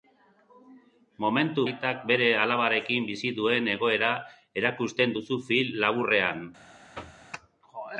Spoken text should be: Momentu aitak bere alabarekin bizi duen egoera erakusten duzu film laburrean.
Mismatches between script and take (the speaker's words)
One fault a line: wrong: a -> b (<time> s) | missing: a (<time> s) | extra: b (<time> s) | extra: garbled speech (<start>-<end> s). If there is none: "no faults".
no faults